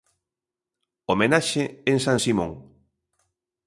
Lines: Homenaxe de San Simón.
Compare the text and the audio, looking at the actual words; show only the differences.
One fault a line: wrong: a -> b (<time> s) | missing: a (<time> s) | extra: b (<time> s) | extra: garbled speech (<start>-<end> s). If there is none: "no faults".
wrong: de -> en (1.9 s)